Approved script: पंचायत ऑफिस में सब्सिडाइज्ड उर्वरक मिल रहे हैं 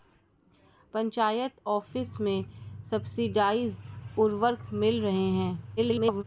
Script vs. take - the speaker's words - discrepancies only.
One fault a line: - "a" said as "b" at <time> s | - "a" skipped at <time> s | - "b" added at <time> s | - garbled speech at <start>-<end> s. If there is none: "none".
- garbled speech at 5.8-6.2 s